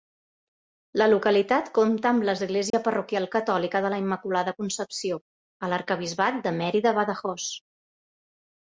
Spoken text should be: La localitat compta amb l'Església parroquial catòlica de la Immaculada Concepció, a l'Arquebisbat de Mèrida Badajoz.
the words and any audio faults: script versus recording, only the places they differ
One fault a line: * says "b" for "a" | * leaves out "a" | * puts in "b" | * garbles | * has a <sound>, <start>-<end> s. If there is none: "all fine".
* has a dropout, 2.7-2.7 s